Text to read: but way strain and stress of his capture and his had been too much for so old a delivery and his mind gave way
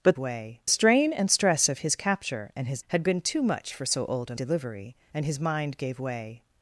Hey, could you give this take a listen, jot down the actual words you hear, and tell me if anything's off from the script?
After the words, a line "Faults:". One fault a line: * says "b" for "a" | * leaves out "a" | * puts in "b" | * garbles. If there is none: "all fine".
but way strain and stress of his capture and his had been too much for so old a delivery and his mind gave way
Faults:
all fine